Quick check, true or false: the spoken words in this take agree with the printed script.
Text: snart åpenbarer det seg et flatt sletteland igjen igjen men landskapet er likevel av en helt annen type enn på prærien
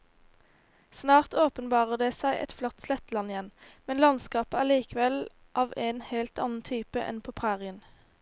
false